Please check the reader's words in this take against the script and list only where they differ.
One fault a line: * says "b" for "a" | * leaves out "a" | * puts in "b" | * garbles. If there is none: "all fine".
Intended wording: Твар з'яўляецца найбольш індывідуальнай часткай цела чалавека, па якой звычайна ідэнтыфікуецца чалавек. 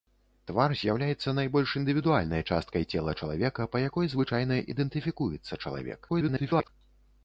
* garbles